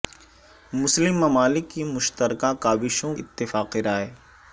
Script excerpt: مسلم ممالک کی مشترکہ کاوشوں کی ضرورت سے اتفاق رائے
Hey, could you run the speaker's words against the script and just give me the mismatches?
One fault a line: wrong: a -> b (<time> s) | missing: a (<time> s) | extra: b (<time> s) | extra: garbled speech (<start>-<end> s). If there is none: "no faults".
missing: کی ضرورت سے (3.1 s)